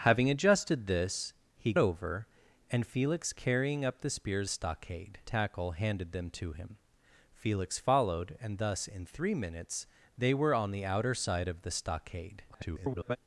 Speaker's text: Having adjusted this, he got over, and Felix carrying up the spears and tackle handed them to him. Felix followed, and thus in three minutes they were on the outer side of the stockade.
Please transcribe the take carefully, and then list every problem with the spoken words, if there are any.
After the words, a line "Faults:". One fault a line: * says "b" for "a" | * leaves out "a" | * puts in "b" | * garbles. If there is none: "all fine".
Having adjusted this, he over, and Felix carrying up the spears stockade tackle handed them to him. Felix followed, and thus in three minutes they were on the outer side of the stockade. [garbled]
Faults:
* leaves out "got"
* says "stockade" for "and"
* garbles